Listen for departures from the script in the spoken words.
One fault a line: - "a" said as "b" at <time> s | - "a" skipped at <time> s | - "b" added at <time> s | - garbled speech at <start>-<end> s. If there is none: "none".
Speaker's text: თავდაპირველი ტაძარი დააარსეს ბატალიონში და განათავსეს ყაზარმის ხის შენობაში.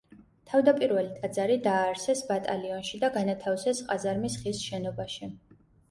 none